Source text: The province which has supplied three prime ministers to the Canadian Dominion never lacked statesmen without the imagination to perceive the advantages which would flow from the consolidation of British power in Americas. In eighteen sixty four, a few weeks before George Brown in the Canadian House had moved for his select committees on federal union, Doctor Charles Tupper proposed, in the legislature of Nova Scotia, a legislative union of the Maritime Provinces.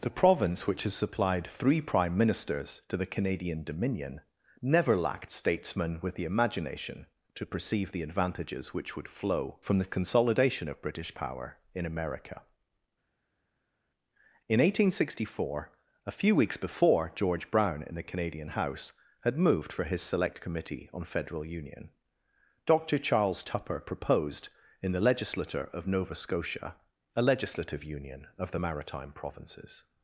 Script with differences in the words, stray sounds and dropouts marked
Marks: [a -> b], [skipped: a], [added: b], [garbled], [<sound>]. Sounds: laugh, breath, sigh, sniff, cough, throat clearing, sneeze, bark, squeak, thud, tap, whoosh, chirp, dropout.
The province which has supplied three prime ministers to the Canadian Dominion never lacked statesmen [without -> with] the imagination to perceive the advantages which would flow from the consolidation of British power in [Americas. -> America] In eighteen sixty four, a few weeks before George Brown in the Canadian House had moved for his select [committees -> committee] on federal union, Doctor Charles Tupper proposed, in the legislature of Nova Scotia, a legislative union of the Maritime Provinces.